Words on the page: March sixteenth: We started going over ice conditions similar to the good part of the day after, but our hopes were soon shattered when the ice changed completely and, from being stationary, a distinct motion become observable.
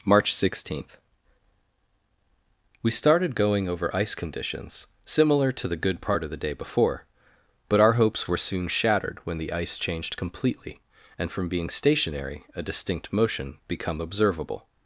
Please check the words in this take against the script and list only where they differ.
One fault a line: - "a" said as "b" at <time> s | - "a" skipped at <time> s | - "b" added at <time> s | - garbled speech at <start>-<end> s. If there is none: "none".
- "after" said as "before" at 6.5 s